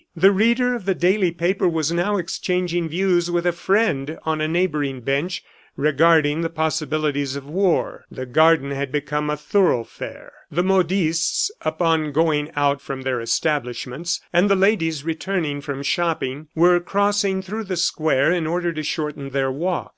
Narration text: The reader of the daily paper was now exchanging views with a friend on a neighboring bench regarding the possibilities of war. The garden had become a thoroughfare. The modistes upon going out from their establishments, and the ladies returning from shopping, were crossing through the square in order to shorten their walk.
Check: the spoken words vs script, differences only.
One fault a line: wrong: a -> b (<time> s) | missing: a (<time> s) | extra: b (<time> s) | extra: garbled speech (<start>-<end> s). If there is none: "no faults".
no faults